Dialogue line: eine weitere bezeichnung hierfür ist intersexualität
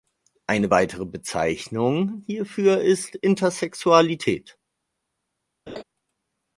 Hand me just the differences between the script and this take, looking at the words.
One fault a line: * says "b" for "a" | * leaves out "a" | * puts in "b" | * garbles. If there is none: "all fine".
all fine